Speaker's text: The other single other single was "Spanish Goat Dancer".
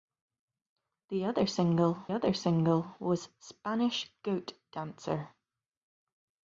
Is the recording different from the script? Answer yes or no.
no